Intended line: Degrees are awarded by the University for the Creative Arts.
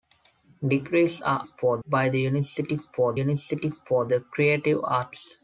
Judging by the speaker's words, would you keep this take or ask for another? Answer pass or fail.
fail